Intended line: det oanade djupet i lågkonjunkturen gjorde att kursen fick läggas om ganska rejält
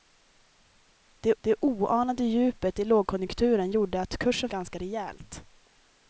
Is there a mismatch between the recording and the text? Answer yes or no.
yes